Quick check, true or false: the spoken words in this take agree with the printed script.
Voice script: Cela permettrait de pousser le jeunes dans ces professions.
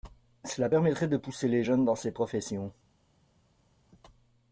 false